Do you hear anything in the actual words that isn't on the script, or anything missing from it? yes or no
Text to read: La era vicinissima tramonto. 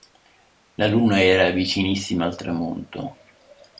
yes